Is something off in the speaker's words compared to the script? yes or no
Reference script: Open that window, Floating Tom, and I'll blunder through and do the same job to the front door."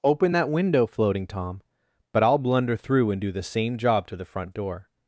yes